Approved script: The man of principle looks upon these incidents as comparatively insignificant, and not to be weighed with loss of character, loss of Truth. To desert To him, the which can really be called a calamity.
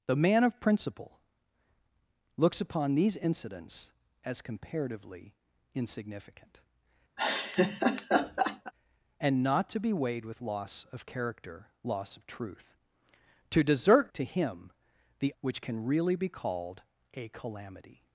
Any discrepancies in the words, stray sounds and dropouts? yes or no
yes